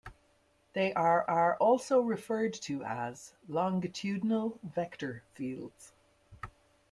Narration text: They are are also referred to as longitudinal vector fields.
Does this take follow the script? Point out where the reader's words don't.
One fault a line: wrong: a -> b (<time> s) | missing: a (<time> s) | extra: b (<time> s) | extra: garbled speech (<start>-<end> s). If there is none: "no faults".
no faults